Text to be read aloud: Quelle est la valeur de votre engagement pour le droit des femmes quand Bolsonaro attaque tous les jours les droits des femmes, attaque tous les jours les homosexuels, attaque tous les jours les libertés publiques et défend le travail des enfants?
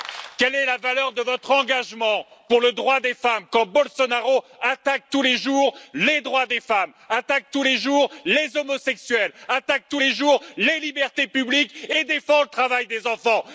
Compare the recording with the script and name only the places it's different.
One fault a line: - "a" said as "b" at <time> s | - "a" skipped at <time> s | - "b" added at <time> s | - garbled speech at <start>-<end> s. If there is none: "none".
none